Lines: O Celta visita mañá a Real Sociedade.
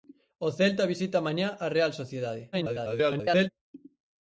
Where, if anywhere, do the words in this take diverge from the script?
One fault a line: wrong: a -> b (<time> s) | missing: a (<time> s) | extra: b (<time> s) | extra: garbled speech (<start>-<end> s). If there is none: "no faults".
extra: garbled speech (2.5-3.5 s)